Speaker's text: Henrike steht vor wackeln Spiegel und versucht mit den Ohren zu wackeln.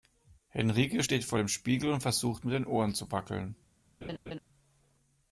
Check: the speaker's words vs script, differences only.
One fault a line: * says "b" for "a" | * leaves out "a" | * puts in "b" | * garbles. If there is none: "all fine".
* says "dem" for "wackeln"